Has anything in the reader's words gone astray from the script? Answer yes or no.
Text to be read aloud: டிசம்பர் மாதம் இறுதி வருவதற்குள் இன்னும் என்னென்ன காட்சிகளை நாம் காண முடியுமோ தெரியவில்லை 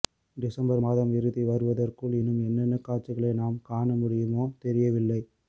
no